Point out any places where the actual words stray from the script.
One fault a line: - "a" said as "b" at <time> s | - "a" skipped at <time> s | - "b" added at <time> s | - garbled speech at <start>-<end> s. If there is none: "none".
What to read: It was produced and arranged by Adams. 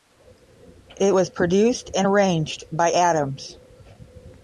none